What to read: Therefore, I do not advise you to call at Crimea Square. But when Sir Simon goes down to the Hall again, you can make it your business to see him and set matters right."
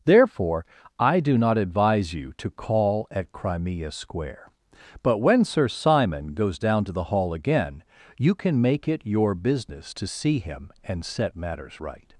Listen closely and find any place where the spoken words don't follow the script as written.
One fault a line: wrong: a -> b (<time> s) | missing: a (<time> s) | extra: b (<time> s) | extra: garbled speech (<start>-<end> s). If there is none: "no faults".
no faults